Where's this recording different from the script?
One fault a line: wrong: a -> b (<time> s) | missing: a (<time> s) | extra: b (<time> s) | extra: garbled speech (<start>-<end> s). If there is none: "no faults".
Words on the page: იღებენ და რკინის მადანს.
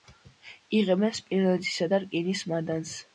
extra: სპილენძისა (1.2 s)